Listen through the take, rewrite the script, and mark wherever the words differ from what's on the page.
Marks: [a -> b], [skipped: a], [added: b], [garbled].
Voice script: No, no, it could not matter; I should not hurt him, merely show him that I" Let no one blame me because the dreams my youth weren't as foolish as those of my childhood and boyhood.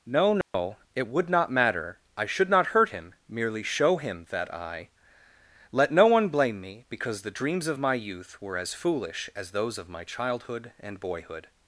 No, no, it [could -> would] not matter; I should not hurt him, merely show him that I" Let no one blame me because the dreams [added: of] my youth [weren't -> were] as foolish as those of my childhood and boyhood.